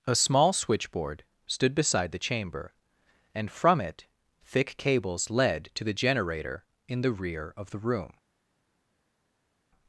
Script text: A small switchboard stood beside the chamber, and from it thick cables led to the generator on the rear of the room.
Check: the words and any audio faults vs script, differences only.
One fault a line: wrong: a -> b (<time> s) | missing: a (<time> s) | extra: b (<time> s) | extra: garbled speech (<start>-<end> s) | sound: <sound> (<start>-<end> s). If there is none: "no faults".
wrong: on -> in (6.9 s)